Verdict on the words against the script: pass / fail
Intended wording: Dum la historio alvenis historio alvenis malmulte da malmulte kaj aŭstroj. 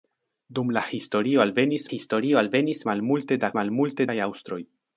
pass